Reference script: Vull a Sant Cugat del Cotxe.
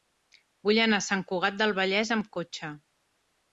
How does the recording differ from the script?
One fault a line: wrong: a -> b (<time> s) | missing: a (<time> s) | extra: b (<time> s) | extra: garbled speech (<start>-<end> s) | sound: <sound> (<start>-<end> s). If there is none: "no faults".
extra: anar (0.8 s)
extra: Vallès amb (1.8 s)